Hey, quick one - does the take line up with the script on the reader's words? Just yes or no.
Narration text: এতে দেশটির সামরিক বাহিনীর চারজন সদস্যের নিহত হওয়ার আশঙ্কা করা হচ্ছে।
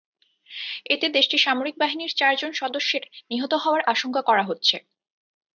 yes